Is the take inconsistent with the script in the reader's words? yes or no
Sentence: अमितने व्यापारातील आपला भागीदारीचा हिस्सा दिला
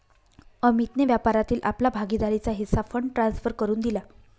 yes